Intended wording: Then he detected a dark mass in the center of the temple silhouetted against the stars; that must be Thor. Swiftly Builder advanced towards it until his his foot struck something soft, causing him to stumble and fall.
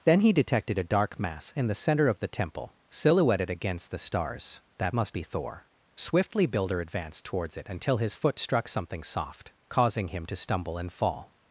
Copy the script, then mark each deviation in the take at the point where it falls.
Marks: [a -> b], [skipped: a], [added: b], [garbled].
Then he detected a dark mass in the center of the temple silhouetted against the stars; that must be Thor. Swiftly Builder advanced towards it until his [skipped: his] foot struck something soft, causing him to stumble and fall.